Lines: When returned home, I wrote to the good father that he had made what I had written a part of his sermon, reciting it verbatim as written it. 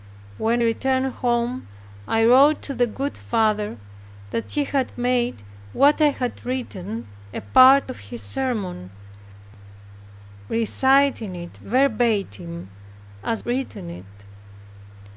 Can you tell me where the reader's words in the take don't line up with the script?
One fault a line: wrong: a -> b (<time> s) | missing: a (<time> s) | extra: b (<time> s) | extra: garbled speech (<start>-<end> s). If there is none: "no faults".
no faults